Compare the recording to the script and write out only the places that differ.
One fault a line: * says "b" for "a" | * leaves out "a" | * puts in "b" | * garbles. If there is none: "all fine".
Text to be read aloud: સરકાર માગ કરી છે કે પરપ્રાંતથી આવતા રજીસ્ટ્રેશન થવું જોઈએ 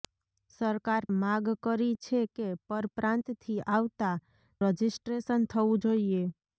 all fine